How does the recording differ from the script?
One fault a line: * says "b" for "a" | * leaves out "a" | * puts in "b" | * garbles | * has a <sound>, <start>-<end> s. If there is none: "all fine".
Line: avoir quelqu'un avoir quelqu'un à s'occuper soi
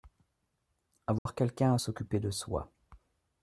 * has a dropout, 1.2-1.3 s
* leaves out "avoir quelqu'un"
* puts in "de"